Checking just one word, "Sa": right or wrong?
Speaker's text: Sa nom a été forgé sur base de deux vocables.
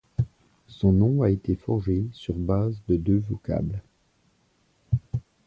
wrong